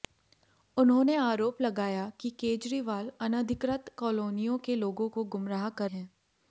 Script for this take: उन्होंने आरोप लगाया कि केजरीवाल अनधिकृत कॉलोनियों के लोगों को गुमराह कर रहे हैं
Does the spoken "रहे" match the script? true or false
false